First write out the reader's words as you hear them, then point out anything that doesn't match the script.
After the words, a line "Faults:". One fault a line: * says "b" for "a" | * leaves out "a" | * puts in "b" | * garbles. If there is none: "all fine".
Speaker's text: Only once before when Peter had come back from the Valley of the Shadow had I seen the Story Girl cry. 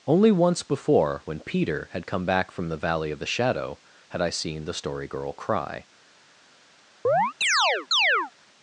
Only once before when Peter had come back from the Valley of the Shadow had I seen the Story Girl cry.
Faults:
all fine